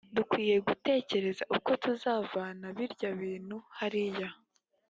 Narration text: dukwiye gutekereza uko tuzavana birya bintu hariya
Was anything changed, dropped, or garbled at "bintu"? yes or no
no